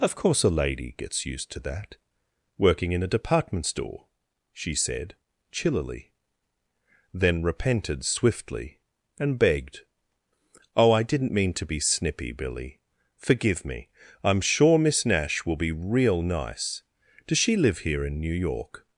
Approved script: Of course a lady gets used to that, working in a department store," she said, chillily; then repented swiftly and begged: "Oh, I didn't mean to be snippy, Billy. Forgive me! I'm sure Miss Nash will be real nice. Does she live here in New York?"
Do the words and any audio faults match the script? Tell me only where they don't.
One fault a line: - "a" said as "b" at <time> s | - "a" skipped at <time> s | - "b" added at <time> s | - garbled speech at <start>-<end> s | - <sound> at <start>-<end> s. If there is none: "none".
none